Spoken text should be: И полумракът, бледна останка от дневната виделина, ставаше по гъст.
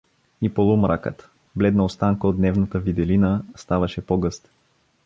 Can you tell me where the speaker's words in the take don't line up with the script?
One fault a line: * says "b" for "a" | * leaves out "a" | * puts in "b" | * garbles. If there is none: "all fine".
all fine